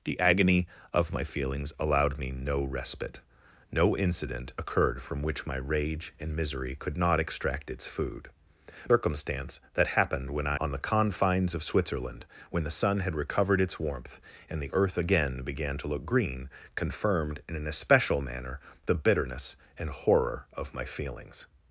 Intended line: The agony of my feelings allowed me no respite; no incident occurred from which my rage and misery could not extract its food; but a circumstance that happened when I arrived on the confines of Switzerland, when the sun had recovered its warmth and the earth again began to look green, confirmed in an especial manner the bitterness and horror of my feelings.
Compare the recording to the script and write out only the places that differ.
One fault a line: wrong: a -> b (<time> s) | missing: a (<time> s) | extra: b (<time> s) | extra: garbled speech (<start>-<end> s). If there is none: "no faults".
missing: but a (8.3 s)
missing: arrived (10.6 s)